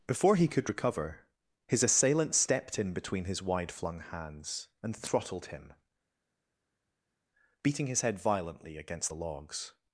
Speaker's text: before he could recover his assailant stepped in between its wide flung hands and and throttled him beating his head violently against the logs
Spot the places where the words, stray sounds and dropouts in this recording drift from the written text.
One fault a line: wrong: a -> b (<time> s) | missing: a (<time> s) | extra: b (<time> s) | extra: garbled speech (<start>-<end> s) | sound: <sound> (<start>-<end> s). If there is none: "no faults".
wrong: its -> his (3.2 s)
missing: and (4.9 s)